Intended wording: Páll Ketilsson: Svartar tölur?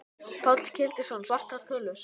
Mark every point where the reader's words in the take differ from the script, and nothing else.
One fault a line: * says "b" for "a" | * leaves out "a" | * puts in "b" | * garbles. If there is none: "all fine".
all fine